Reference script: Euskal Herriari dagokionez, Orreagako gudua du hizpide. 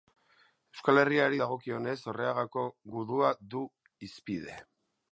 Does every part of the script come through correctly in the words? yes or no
yes